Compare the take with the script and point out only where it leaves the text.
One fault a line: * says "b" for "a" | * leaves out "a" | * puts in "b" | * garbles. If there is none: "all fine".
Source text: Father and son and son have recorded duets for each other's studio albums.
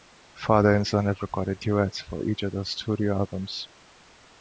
* leaves out "and son"